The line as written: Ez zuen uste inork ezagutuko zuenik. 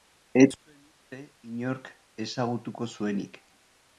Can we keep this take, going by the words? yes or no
yes